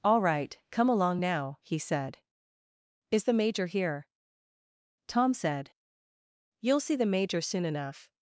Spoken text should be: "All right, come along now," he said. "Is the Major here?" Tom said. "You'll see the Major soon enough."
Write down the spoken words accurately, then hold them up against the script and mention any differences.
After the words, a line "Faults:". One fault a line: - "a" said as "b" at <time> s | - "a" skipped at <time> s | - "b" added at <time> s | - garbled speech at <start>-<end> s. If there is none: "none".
"All right, come along now," he said. "Is the Major here?" Tom said. "You'll see the Major soon enough."
Faults:
none